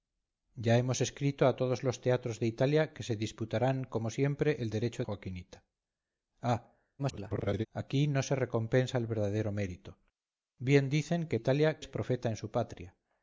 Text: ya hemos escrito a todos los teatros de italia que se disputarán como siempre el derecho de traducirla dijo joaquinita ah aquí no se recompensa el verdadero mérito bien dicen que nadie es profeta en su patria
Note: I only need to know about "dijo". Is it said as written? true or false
false